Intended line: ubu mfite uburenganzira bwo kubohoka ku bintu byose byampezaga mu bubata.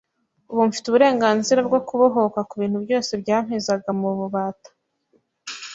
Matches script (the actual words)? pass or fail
pass